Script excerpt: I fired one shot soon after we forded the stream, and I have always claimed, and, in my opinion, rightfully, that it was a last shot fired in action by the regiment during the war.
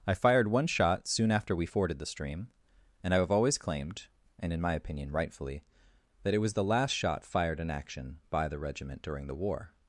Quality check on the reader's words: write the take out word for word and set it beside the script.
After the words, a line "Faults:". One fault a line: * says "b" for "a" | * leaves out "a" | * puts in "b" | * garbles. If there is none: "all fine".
I fired one shot soon after we forded the stream, and I have always claimed, and, in my opinion, rightfully, that it was the last shot fired in action by the regiment during the war.
Faults:
* says "the" for "a"